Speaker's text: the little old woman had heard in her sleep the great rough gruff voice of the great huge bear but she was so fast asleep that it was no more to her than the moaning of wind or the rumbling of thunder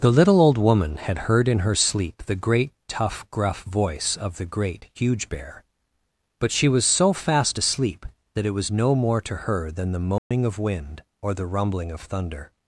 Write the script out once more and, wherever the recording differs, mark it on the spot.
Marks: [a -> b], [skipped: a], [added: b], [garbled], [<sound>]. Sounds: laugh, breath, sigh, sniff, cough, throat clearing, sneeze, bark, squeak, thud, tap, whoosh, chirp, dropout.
the little old woman had heard in her sleep the great [rough -> tough] gruff voice of the great huge bear but she was so fast asleep that it was no more to her than the moaning [dropout] of wind or the rumbling of thunder